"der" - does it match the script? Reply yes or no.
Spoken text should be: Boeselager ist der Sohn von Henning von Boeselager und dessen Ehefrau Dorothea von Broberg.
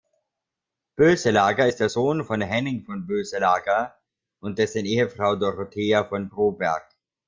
yes